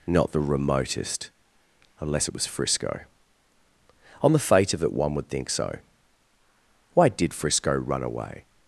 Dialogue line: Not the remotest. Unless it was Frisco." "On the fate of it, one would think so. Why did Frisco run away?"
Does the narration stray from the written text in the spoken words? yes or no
no